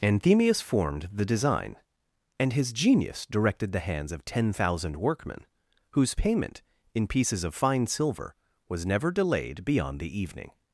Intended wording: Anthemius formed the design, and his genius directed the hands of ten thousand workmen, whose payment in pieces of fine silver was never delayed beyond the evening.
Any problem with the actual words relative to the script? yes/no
no